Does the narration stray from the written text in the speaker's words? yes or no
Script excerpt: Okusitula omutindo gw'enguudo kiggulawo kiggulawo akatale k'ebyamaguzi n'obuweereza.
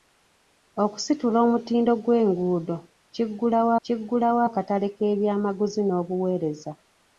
no